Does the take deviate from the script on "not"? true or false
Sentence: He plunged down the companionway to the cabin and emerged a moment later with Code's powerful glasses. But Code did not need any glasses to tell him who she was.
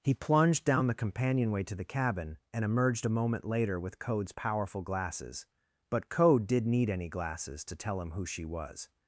true